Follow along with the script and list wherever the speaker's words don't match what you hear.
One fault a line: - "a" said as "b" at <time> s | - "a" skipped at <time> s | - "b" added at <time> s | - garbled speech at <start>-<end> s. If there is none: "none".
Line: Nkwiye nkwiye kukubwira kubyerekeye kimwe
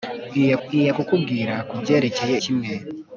none